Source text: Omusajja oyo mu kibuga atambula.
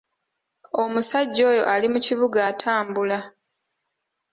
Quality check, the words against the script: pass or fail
fail